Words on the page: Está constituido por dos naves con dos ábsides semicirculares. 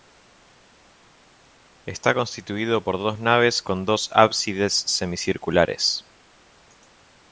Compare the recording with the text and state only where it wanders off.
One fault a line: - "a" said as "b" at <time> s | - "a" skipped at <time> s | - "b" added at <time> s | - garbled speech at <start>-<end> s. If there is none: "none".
none